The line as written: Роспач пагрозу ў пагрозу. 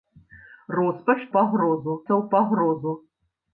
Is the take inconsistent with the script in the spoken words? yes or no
no